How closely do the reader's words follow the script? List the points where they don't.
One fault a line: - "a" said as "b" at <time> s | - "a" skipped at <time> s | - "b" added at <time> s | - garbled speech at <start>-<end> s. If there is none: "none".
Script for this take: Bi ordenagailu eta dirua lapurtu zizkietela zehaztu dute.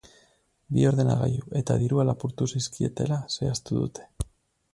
none